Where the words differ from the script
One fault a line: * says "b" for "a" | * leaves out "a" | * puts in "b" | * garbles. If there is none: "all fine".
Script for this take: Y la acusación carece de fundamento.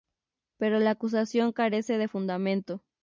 * says "Pero" for "Y"